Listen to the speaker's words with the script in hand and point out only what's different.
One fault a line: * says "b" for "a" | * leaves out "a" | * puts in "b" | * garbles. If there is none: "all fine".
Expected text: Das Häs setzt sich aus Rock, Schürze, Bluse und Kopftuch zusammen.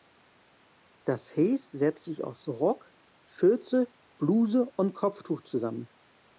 all fine